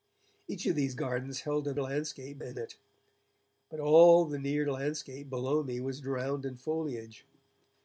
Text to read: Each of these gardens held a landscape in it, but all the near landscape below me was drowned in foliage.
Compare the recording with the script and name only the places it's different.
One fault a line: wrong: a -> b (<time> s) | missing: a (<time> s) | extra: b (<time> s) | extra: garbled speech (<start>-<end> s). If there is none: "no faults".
no faults